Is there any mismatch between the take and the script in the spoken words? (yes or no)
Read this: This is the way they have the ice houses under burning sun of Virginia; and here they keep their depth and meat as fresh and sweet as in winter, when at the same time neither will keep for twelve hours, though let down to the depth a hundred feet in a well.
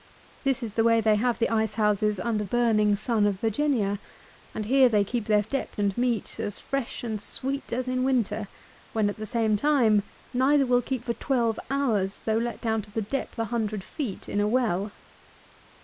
no